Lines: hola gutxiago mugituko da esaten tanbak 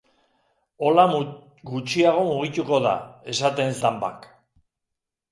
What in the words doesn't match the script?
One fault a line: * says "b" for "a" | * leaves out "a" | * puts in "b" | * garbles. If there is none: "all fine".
all fine